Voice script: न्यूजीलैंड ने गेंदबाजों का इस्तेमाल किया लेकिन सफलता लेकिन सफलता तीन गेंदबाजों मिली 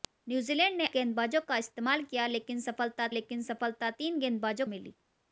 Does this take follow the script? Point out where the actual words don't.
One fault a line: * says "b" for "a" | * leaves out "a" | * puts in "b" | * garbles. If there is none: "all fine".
all fine